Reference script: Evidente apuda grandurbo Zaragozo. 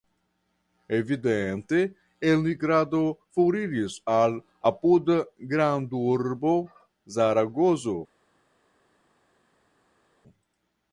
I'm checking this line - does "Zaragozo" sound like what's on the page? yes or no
yes